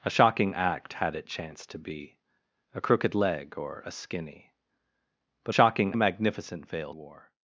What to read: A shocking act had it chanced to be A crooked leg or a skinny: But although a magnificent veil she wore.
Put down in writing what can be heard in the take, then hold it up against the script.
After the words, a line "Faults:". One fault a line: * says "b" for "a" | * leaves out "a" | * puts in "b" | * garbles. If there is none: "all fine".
A shocking act had it chanced to be A crooked leg or a skinny: But shocking a magnificent veil wore.
Faults:
* says "shocking" for "although"
* leaves out "she"